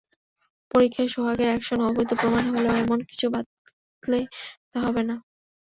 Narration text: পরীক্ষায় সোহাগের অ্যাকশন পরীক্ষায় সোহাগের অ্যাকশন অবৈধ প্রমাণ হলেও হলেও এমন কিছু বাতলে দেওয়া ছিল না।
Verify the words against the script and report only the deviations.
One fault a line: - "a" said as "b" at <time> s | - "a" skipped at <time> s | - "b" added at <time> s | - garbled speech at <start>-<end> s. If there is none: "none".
- "পরীক্ষায় সোহাগের অ্যাকশন" skipped at 1.8 s
- "হলেও" skipped at 2.7 s
- "ছিল" said as "হবে" at 4.9 s